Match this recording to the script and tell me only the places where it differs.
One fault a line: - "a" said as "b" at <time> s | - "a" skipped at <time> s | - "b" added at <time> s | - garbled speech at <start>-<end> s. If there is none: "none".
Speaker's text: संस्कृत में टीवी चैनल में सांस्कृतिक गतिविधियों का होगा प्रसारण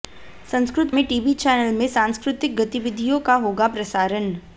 none